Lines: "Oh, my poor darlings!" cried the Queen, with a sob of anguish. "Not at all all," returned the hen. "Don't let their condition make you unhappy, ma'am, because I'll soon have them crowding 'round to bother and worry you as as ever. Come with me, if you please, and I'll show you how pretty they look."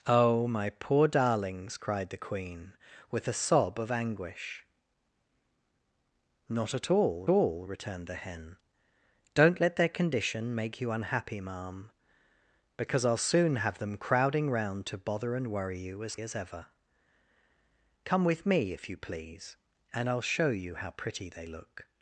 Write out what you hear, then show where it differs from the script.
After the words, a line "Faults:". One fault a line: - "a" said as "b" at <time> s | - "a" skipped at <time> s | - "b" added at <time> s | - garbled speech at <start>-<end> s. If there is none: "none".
"Oh, my poor darlings!" cried the Queen, with a sob of anguish. "Not at all all," returned the hen. "Don't let their condition make you unhappy, ma'am, because I'll soon have them crowding 'round to bother and worry you as as ever. Come with me, if you please, and I'll show you how pretty they look."
Faults:
none